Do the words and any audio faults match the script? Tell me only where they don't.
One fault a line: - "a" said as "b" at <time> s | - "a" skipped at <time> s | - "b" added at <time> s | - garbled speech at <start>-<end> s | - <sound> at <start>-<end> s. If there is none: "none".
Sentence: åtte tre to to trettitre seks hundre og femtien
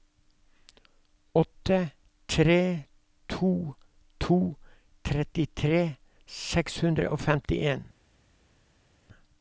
none